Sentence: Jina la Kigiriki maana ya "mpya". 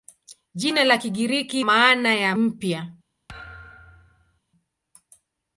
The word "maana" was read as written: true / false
true